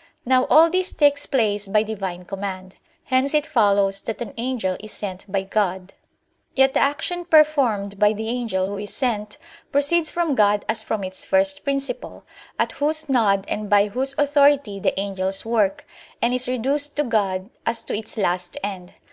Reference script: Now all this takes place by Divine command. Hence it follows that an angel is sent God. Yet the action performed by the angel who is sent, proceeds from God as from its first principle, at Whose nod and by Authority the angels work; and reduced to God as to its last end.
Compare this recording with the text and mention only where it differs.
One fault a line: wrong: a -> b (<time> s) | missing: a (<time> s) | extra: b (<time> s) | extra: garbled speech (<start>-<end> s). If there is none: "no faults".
extra: by (5.3 s)
extra: Whose (13.9 s)
extra: is (16.3 s)